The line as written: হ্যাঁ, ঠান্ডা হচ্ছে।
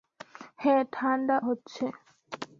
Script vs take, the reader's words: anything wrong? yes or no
no